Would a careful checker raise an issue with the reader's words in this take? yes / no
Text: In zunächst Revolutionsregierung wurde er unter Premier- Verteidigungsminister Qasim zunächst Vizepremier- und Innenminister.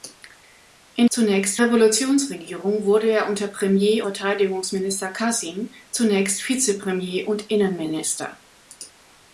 no